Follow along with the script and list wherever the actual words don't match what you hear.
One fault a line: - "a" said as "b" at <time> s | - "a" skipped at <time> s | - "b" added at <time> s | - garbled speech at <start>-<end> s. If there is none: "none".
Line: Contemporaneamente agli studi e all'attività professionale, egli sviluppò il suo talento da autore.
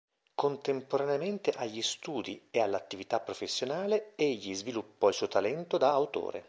none